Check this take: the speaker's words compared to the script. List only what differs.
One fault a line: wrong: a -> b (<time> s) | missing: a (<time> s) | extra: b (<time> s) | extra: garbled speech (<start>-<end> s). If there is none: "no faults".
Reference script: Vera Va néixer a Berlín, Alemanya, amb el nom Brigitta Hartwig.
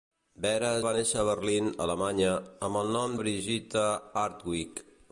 no faults